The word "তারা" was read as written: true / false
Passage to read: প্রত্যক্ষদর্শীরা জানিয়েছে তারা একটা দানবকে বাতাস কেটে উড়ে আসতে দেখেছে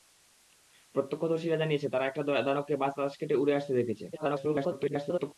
true